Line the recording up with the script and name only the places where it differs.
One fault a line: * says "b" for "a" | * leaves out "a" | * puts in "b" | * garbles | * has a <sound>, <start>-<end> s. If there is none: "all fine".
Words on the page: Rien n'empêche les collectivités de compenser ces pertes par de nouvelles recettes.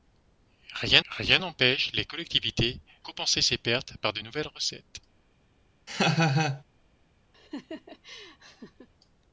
* puts in "rien"
* leaves out "de"
* has a laugh, 5.9-6.6 s
* has a laugh, 7.3-8.9 s